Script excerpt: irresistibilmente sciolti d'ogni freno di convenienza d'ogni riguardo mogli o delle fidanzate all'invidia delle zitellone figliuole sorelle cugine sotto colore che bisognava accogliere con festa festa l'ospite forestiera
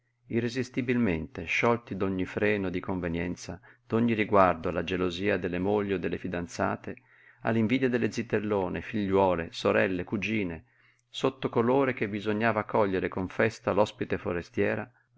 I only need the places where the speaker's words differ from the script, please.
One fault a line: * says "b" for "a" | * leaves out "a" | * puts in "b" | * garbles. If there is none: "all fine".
* puts in "alla gelosia delle"
* leaves out "festa"